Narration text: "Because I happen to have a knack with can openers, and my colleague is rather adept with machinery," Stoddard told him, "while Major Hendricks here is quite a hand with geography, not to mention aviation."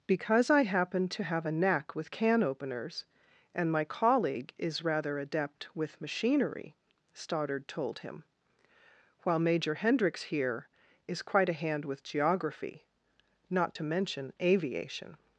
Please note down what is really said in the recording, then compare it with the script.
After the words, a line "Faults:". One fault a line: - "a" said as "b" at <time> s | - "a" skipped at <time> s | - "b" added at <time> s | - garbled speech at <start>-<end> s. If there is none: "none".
"Because I happen to have a knack with can openers, and my colleague is rather adept with machinery," Stoddard told him, "while Major Hendricks here is quite a hand with geography, not to mention aviation."
Faults:
none